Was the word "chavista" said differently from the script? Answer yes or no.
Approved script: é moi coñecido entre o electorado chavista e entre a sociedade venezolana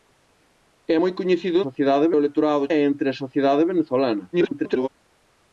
yes